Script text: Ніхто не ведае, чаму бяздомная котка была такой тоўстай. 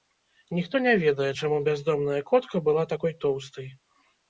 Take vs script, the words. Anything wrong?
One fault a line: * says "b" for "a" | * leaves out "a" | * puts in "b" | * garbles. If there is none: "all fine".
all fine